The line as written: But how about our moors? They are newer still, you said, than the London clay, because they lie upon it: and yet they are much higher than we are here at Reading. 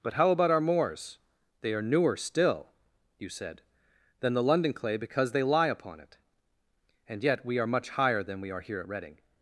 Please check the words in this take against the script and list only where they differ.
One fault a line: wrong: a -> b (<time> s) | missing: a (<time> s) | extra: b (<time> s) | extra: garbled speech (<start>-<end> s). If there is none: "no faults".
wrong: they -> we (7.5 s)